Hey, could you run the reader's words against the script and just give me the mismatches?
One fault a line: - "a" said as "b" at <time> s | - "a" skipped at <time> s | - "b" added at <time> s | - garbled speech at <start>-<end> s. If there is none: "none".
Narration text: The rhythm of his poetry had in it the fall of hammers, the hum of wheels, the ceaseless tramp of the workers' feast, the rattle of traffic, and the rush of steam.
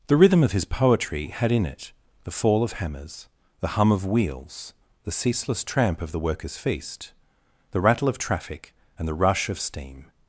none